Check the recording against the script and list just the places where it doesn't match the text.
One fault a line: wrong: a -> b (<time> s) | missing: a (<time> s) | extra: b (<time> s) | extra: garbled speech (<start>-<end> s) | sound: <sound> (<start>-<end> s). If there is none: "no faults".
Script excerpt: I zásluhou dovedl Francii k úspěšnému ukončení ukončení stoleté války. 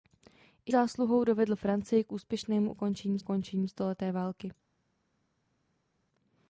no faults